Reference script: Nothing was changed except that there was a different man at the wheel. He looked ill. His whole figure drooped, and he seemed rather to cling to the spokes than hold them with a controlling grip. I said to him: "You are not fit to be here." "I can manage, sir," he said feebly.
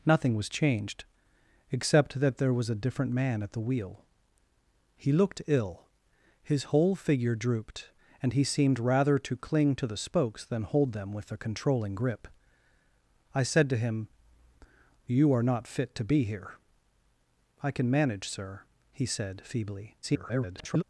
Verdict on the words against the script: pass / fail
fail